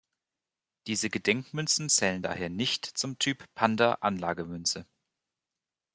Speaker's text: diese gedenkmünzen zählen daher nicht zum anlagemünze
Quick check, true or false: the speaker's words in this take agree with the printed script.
false